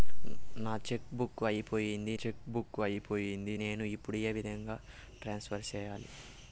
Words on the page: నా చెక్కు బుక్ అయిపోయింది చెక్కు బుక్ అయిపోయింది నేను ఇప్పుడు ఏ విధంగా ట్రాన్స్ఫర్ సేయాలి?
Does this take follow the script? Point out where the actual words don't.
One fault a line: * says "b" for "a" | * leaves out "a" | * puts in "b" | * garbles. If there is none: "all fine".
all fine